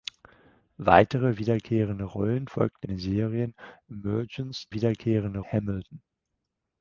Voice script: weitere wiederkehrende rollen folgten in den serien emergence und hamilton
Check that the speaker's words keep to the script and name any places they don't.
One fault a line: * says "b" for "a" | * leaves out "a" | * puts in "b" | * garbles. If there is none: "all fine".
* leaves out "in"
* says "wiederkehrende" for "und"